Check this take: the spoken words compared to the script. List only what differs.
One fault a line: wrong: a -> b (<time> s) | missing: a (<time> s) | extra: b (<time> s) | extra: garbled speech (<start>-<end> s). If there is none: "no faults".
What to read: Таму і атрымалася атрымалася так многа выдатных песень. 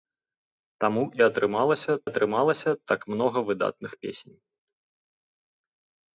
no faults